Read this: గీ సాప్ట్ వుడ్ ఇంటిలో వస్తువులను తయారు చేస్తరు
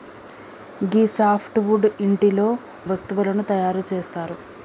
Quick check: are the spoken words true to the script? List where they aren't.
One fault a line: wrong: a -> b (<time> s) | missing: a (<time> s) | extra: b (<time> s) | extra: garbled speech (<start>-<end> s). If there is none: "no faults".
no faults